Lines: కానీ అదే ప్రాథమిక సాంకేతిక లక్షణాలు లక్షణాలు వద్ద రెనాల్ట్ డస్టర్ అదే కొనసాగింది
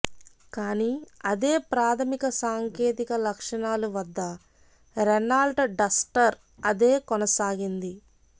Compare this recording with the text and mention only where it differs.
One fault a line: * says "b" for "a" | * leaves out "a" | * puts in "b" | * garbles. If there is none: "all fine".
* leaves out "లక్షణాలు"